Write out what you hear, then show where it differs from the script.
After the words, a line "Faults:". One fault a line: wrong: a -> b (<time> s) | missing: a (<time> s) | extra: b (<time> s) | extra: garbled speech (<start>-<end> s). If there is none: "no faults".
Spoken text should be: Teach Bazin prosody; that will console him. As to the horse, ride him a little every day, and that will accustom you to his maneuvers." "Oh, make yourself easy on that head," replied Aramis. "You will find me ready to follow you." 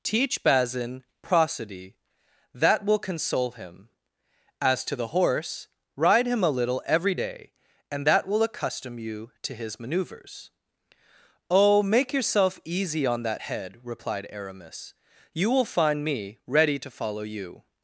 Teach Bazin prosody; that will console him. As to the horse, ride him a little every day, and that will accustom you to his maneuvers." "Oh, make yourself easy on that head," replied Aramis. "You will find me ready to follow you."
Faults:
no faults